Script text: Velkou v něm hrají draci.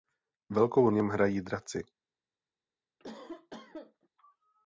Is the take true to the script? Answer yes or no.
yes